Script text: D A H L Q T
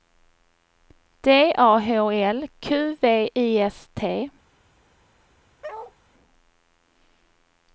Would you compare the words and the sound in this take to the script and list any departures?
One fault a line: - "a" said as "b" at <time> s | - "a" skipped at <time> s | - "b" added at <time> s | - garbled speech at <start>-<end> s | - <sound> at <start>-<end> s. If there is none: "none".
- "V I S" added at 3.0 s
- bark at 5.6-5.9 s